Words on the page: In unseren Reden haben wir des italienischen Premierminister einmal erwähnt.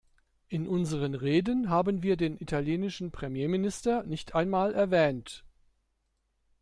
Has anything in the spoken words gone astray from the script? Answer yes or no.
yes